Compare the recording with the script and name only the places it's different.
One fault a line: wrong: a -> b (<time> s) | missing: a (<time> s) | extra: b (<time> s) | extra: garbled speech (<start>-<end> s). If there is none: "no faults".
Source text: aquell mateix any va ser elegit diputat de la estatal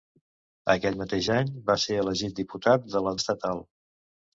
no faults